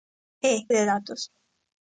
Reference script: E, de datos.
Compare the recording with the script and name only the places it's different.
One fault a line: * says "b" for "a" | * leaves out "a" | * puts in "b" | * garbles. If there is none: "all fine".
all fine